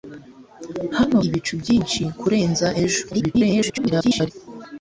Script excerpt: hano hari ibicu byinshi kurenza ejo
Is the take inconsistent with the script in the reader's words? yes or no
yes